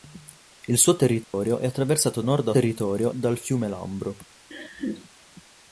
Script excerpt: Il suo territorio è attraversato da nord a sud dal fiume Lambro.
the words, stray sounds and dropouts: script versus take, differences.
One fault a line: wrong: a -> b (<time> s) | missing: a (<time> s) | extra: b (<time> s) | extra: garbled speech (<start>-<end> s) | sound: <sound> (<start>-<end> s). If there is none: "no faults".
sound: dropout (1.2-1.3 s)
missing: da (2.2 s)
wrong: sud -> territorio (2.5 s)
sound: laugh (4.5-5.1 s)